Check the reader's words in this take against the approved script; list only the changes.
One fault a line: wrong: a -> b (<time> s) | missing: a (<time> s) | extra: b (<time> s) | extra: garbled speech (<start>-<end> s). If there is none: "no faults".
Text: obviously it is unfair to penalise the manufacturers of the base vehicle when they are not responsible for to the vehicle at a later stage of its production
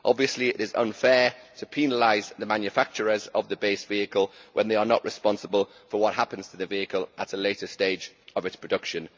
extra: what happens (6.0 s)